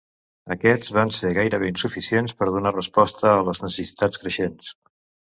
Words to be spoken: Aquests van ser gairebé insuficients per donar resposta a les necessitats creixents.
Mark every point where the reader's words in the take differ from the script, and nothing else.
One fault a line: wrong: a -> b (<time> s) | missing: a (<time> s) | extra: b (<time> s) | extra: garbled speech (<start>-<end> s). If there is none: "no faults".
no faults